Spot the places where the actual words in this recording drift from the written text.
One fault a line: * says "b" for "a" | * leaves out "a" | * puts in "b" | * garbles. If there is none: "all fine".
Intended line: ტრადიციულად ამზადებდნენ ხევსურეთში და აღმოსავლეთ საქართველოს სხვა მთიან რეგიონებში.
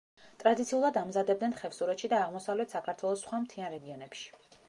all fine